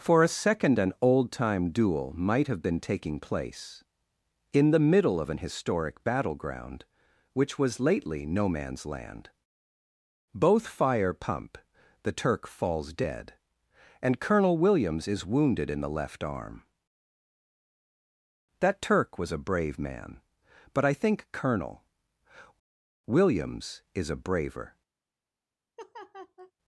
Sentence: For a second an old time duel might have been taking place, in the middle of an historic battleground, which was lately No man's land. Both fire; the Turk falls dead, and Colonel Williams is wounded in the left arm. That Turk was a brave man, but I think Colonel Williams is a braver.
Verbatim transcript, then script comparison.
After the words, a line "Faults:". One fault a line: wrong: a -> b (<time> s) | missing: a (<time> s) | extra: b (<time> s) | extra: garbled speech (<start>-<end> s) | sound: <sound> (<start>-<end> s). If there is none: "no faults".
For a second an old time duel might have been taking place, in the middle of an historic battleground, which was lately No man's land. Both fire; pump the Turk falls dead, and Colonel Williams is wounded in the left arm. That Turk was a brave man, but I think Colonel Williams is a braver.
Faults:
extra: pump (11.1 s)
sound: laugh (25.8-26.5 s)